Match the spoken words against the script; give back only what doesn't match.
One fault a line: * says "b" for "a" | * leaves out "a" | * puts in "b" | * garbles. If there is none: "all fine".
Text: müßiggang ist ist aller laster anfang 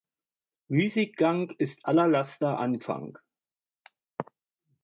* leaves out "ist"